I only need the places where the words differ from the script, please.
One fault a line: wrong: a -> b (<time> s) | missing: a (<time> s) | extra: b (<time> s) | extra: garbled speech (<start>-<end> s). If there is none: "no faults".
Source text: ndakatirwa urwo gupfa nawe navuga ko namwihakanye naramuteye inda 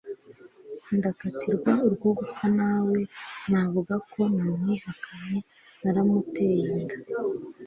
no faults